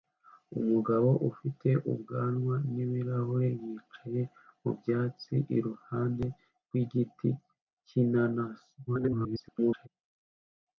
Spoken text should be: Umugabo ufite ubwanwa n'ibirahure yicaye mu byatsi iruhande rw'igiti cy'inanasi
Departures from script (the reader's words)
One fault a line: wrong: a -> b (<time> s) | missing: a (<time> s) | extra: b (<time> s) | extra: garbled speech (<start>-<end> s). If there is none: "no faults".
extra: garbled speech (8.9-9.9 s)